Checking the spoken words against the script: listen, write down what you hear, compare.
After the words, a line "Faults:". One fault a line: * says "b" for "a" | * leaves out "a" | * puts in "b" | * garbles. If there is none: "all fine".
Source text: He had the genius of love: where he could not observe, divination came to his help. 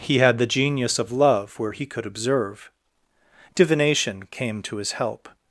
He had the genius of love: where he could observe, divination came to his help.
Faults:
* leaves out "not"